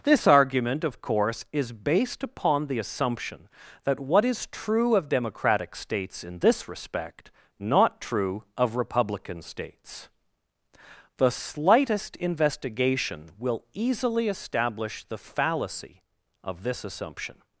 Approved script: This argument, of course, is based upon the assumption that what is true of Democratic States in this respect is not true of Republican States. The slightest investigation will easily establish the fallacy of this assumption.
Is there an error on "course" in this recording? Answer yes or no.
no